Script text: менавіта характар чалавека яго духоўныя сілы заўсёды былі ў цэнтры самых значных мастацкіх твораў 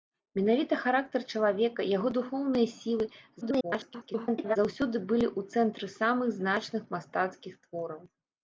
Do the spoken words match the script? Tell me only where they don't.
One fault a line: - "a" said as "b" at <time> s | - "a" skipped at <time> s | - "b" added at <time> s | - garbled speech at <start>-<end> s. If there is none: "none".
- garbled speech at 3.4-4.6 s